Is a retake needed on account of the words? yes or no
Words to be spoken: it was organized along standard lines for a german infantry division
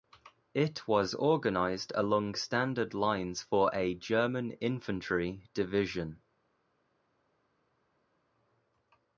no